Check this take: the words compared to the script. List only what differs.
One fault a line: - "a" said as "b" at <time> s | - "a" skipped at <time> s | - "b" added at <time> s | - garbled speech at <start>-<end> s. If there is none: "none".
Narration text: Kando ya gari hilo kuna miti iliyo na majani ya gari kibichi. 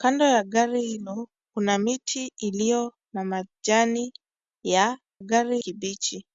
none